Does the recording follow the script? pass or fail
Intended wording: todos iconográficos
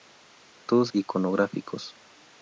pass